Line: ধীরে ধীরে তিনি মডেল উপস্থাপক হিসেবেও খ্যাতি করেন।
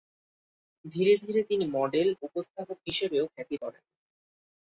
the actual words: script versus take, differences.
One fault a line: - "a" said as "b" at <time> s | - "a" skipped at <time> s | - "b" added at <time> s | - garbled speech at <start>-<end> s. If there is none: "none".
none